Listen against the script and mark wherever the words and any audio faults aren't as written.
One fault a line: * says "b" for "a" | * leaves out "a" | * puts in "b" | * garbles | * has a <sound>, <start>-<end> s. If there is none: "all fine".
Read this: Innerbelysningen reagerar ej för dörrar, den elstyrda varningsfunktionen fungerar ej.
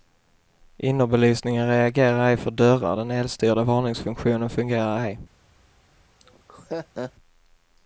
* has a laugh, 6.2-7.1 s